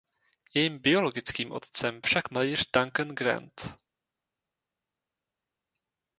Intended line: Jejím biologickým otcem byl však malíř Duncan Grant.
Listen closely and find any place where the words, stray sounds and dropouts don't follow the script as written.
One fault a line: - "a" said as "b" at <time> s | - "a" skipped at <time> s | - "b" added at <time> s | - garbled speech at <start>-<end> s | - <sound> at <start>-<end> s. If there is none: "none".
- "byl" skipped at 2.0 s